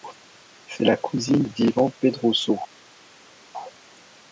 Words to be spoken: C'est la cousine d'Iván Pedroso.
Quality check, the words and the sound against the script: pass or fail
pass